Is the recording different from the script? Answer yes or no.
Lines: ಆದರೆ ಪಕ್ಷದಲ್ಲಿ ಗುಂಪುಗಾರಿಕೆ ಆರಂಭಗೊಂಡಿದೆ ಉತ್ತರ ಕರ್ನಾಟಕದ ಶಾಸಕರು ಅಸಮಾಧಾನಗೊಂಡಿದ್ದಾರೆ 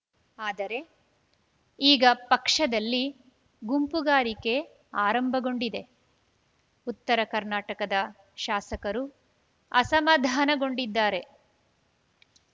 yes